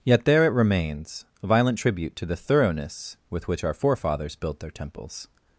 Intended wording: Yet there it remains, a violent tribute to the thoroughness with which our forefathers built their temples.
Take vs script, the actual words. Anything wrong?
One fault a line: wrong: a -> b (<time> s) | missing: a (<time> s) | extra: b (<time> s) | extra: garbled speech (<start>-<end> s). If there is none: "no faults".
no faults